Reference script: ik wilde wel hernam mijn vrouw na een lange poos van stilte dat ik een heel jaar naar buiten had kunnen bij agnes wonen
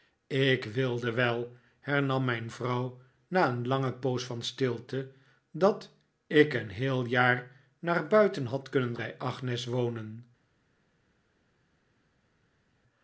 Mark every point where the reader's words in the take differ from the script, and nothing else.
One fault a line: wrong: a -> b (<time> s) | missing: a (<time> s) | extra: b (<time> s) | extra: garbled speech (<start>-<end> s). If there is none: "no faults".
no faults